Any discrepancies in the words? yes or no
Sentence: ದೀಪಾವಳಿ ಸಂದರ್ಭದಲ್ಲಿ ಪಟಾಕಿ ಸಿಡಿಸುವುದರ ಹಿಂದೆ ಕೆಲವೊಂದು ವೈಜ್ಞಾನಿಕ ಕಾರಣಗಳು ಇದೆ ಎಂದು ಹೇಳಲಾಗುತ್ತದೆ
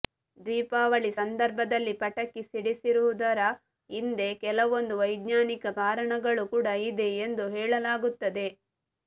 yes